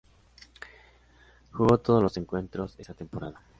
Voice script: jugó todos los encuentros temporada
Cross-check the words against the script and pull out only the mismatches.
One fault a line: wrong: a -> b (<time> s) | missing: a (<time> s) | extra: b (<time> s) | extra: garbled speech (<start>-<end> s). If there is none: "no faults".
extra: esa (2.8 s)